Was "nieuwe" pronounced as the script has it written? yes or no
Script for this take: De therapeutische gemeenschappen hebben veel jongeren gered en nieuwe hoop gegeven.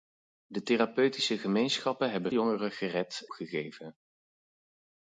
no